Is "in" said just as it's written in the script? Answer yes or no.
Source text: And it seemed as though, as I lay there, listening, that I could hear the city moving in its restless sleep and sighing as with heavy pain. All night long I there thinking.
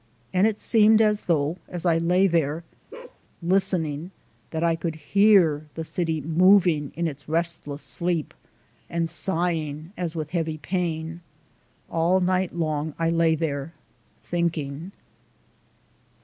yes